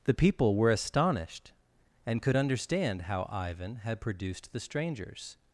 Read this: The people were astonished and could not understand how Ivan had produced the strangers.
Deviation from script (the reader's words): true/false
true